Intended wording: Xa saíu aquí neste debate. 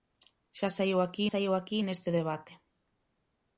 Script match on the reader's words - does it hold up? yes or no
no